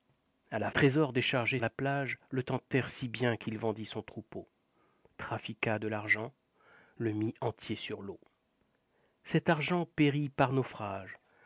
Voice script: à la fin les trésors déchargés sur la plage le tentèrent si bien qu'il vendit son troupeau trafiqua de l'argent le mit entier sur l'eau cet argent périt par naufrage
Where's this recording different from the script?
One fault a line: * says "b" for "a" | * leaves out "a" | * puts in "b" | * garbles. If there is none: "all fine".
* leaves out "fin les"
* leaves out "sur"